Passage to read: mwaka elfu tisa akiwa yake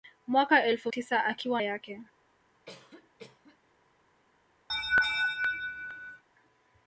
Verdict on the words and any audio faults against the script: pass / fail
fail